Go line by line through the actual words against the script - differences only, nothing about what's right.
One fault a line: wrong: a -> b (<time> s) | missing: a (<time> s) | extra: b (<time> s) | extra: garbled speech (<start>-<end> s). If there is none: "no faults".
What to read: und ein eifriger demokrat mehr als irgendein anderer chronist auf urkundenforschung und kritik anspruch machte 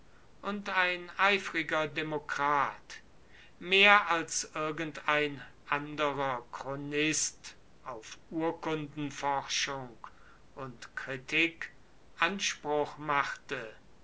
no faults